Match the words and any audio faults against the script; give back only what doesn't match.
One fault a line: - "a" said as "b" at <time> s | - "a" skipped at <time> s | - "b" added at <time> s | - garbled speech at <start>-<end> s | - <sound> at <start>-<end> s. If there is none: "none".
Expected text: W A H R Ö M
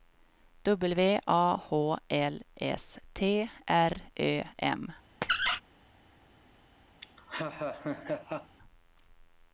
- "L S T" added at 2.1 s
- squeak at 5.2-5.6 s
- laugh at 7.0-8.6 s